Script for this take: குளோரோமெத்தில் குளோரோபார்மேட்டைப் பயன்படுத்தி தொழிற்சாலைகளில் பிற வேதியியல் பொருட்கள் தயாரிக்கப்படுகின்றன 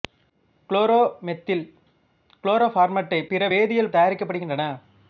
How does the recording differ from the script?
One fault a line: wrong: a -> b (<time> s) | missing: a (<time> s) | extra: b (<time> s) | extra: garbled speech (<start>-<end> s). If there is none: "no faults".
missing: பயன்படுத்தி தொழிற்சாலைகளில் (3.3 s)
missing: பொருட்கள் (3.9 s)